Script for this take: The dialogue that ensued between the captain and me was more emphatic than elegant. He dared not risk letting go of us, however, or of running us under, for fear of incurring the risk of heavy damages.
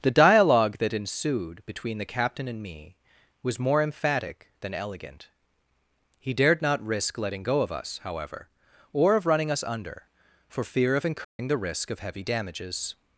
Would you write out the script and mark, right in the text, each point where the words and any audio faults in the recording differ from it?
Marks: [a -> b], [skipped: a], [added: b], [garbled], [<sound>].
The dialogue that ensued between the captain and me was more emphatic than elegant. He dared not risk letting go of us, however, or of running us under, for fear of incurring [dropout] the risk of heavy damages.